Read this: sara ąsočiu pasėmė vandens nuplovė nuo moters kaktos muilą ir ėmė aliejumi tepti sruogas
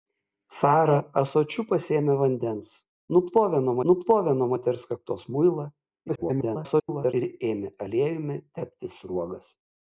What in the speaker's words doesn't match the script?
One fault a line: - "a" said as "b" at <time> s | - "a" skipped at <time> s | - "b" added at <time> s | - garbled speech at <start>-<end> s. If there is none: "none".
- "nuplovė nuo" added at 3.9 s
- garbled speech at 6.1-7.1 s